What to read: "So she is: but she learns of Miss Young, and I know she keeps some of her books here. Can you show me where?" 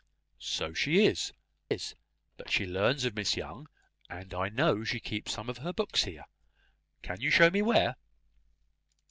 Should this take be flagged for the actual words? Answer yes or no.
yes